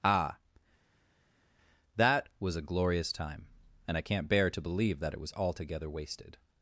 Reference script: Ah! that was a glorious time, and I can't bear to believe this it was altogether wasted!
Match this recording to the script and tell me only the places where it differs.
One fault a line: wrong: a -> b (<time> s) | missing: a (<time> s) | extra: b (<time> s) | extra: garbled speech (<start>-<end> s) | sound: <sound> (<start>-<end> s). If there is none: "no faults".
wrong: this -> that (5.0 s)